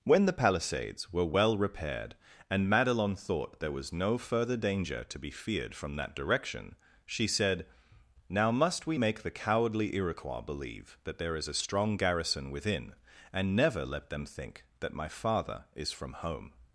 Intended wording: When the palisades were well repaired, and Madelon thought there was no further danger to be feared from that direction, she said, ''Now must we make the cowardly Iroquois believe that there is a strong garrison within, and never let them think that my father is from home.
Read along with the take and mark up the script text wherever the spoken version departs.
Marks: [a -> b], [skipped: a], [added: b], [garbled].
When the palisades were well repaired, and Madelon thought there was no further danger to be feared from that direction, she said, ''Now must we make the cowardly Iroquois believe that there is a strong garrison within, and never let them think that my father is from home.